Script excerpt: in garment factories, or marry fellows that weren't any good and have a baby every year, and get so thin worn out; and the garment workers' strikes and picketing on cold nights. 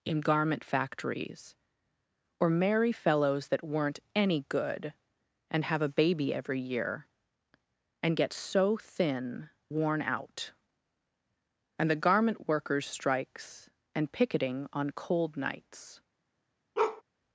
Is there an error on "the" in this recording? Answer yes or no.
no